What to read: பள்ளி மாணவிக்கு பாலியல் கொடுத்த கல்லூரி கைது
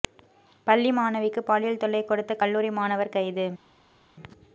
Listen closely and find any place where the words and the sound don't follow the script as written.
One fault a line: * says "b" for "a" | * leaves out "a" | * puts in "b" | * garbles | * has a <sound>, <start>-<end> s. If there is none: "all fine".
* puts in "தொல்லை"
* puts in "மாணவர்"